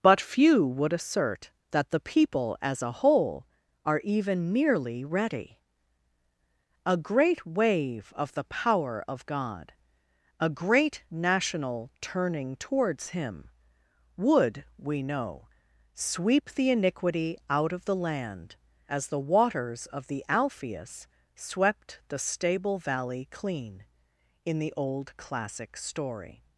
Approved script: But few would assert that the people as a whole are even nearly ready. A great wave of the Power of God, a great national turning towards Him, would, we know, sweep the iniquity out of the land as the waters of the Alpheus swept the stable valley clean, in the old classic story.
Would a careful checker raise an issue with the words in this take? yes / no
no